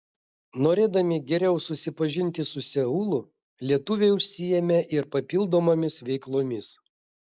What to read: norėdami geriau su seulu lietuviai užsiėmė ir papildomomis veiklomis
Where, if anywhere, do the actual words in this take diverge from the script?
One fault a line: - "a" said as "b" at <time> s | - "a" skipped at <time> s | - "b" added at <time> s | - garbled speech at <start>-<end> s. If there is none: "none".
- "susipažinti" added at 1.6 s